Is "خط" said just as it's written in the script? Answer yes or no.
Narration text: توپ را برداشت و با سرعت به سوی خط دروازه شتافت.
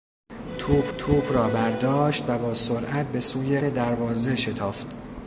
no